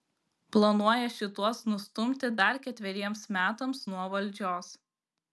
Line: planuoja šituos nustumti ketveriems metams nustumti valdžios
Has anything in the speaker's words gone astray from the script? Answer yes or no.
yes